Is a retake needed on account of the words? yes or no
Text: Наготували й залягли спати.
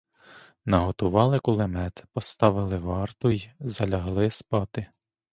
yes